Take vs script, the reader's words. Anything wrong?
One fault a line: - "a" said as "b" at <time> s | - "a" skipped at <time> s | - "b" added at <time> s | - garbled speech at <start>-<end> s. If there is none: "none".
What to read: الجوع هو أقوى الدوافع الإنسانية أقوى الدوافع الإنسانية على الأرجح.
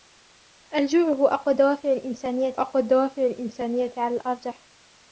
none